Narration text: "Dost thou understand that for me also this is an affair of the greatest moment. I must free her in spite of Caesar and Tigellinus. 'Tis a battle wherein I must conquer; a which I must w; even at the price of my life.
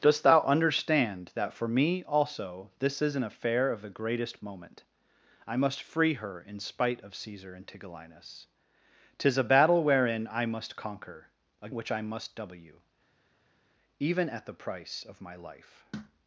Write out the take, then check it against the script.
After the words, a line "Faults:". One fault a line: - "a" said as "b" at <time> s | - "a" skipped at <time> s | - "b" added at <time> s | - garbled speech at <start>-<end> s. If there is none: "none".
"Dost thou understand that for me also this is an affair of the greatest moment. I must free her in spite of Caesar and Tigellinus. 'Tis a battle wherein I must conquer; a which I must w; even at the price of my life.
Faults:
none